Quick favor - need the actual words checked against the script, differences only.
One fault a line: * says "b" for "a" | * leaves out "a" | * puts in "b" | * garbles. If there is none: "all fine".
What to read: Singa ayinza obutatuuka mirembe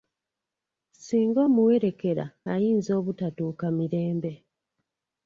* puts in "omuwerekera"